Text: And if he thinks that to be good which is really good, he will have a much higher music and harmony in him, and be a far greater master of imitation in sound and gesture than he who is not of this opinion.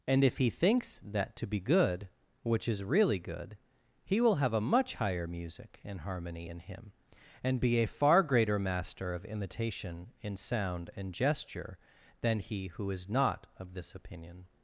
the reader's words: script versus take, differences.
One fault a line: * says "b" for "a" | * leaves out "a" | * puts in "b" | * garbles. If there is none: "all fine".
all fine